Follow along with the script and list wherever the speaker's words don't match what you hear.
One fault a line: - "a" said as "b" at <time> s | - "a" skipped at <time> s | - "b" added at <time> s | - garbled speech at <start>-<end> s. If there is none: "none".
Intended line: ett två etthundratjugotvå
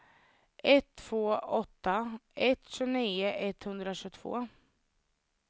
- "åtta ett tjugonio" added at 1.4 s